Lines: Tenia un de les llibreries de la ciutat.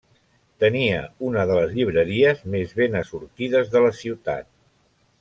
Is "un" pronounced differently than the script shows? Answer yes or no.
yes